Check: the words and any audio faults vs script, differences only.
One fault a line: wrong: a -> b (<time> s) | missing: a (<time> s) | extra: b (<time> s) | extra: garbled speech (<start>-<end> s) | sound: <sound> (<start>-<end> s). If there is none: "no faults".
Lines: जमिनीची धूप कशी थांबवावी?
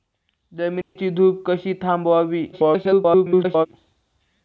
sound: dropout (0.8-1.0 s)
extra: garbled speech (2.5-3.7 s)